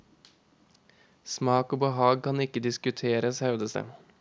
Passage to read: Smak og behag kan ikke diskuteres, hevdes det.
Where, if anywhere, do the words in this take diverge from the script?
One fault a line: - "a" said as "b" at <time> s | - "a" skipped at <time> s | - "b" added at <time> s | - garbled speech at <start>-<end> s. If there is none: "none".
none